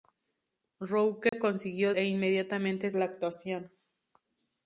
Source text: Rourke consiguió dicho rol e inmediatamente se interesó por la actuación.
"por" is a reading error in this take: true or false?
true